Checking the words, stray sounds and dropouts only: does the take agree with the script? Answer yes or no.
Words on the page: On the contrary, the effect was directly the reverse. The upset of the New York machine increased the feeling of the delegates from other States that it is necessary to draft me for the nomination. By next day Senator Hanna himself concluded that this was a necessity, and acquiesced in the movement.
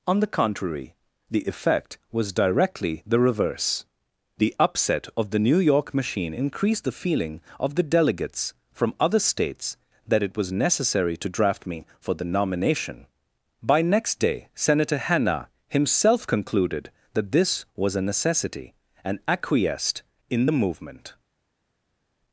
no